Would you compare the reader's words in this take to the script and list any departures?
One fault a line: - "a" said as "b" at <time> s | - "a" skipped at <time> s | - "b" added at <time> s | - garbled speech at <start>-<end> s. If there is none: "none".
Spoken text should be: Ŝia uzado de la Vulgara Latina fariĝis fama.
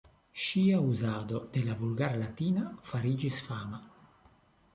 none